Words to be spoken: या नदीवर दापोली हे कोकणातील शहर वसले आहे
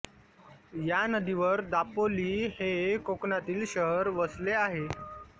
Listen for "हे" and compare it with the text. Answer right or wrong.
right